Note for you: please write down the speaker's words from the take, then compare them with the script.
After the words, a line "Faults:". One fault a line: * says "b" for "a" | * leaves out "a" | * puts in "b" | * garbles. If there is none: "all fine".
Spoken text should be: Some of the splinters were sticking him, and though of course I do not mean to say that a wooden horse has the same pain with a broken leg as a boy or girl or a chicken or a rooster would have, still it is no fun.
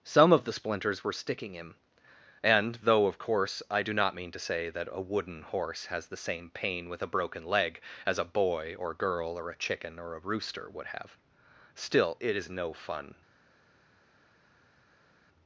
Some of the splinters were sticking him, and though of course I do not mean to say that a wooden horse has the same pain with a broken leg as a boy or girl or a chicken or a rooster would have, still it is no fun.
Faults:
all fine